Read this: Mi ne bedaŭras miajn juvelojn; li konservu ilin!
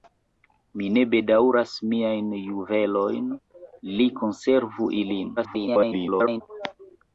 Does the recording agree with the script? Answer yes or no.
no